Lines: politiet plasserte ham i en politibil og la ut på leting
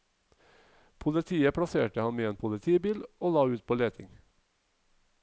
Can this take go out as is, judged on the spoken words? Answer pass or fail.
pass